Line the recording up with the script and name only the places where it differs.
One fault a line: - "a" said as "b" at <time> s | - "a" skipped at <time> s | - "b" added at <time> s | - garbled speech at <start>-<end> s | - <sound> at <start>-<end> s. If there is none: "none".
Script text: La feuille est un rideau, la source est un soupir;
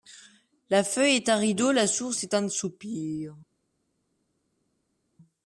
none